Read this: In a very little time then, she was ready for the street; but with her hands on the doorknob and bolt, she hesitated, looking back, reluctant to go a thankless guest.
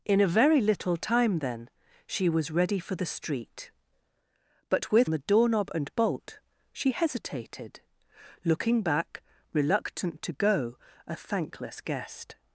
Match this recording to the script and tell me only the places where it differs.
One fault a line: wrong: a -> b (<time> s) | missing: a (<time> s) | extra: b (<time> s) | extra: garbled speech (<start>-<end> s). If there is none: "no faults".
missing: her hands on (5.1 s)